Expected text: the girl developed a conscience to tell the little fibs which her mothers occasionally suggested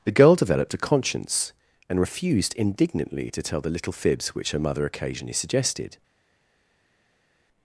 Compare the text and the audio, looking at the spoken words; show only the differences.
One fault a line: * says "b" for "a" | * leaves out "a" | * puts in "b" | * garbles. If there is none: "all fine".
* puts in "and refused indignantly"
* says "mother" for "mothers"